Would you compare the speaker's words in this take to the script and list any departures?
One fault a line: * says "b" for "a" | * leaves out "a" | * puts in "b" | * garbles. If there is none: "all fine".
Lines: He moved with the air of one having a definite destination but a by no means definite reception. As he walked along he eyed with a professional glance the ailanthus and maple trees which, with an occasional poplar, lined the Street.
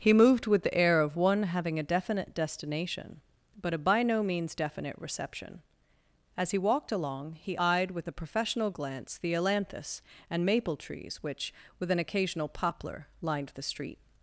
all fine